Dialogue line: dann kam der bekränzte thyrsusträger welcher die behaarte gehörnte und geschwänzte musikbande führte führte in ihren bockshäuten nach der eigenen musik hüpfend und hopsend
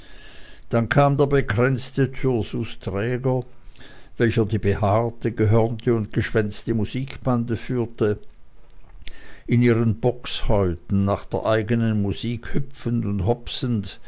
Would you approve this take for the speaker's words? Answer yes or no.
no